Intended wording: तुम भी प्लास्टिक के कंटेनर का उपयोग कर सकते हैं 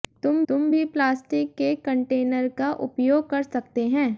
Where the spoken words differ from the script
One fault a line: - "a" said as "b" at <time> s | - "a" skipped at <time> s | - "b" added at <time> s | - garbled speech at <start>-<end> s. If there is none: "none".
- "तुम" added at 0.5 s